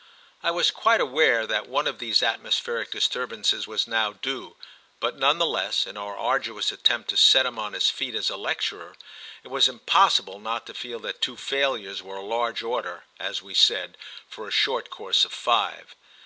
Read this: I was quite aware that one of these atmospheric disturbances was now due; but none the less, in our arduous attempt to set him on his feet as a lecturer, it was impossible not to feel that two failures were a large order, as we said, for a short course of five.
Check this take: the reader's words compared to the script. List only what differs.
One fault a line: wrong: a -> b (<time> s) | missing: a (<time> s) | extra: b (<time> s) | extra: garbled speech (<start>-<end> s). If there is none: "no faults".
no faults